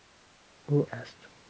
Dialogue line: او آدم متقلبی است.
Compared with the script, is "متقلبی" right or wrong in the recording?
wrong